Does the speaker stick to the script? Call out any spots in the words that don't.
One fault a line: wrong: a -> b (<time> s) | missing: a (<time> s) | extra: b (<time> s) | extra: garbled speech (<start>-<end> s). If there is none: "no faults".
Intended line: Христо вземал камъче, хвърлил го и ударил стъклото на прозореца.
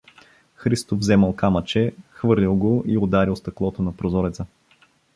no faults